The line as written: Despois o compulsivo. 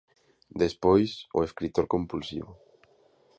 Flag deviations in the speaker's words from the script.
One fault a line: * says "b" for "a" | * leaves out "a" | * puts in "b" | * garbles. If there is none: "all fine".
* puts in "escritor"